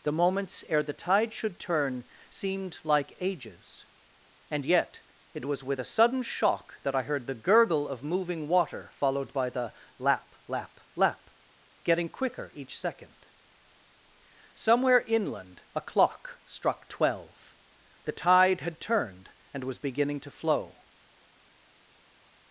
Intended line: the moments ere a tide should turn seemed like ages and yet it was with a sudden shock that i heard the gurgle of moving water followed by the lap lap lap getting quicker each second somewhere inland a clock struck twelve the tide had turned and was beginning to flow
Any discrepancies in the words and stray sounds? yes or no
yes